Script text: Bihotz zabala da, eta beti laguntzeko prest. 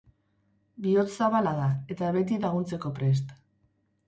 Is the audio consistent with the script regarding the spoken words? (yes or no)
yes